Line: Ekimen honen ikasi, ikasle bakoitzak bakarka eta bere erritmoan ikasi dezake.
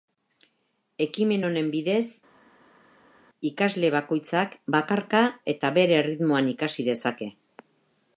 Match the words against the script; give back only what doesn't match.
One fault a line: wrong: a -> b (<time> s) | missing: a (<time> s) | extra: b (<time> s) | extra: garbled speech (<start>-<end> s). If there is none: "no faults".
wrong: ikasi -> bidez (1.7 s)